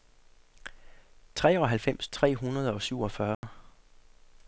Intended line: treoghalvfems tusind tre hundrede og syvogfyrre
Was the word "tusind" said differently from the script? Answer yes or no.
yes